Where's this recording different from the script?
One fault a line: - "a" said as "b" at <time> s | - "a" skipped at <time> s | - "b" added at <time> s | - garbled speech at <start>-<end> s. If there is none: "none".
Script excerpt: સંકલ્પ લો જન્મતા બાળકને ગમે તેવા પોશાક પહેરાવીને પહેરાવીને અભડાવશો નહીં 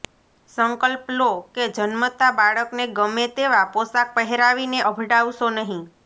- "કે" added at 1.5 s
- "પહેરાવીને" skipped at 4.8 s